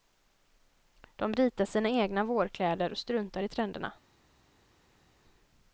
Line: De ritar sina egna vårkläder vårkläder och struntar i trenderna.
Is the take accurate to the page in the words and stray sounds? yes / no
no